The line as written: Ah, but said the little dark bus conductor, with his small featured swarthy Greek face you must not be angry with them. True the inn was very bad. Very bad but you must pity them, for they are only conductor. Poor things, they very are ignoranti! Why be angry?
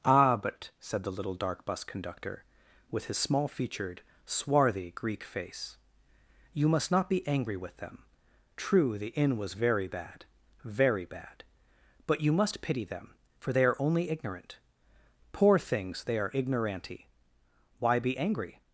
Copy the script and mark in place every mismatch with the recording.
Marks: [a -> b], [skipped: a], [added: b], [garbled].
Ah, but said the little dark bus conductor, with his small featured swarthy Greek face you must not be angry with them. True the inn was very bad. Very bad but you must pity them, for they are only [conductor. -> ignorant] Poor things, they [skipped: very] are ignoranti! Why be angry?